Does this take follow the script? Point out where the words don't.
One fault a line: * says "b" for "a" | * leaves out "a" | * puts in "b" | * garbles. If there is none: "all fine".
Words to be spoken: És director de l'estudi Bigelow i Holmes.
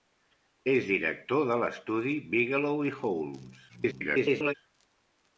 * garbles